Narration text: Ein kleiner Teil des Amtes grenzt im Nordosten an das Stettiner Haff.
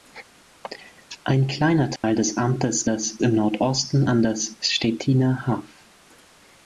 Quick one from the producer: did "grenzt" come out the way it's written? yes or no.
no